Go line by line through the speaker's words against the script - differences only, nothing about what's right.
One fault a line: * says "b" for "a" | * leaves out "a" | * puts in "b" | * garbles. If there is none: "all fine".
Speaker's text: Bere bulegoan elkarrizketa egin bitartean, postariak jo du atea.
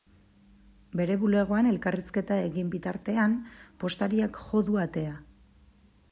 all fine